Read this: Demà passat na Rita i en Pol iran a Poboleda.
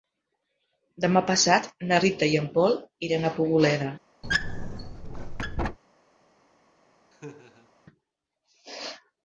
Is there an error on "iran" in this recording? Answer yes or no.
no